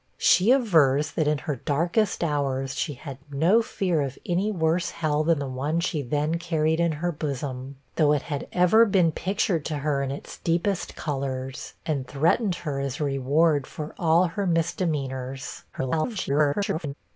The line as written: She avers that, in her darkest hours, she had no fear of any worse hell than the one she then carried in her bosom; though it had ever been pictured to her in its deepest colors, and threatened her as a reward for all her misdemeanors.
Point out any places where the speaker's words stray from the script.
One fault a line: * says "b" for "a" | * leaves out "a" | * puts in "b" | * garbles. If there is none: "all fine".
* garbles